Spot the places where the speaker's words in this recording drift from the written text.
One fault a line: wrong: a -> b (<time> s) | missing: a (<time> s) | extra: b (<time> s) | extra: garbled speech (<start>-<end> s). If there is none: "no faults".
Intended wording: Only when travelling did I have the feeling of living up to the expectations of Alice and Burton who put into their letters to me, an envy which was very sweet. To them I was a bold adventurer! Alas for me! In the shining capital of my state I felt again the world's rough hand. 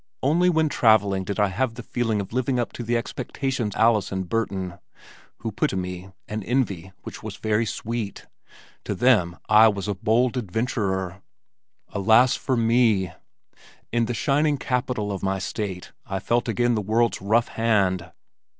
missing: of (3.8 s)
missing: into their letters (5.7 s)